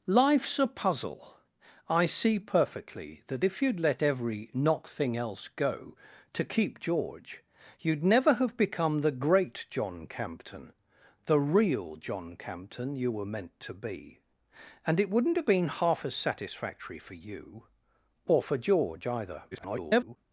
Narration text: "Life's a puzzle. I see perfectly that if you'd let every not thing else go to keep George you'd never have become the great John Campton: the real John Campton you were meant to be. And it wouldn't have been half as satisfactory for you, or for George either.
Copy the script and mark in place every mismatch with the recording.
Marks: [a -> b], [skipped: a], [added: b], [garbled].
"Life's a puzzle. I see perfectly that if you'd let every not thing else go to keep George you'd never have become the great John Campton: the real John Campton you were meant to be. And it wouldn't have been half as satisfactory for you, or for George either. [garbled]